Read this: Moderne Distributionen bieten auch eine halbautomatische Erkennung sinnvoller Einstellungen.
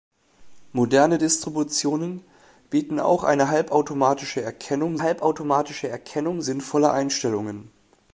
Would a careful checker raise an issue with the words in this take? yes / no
yes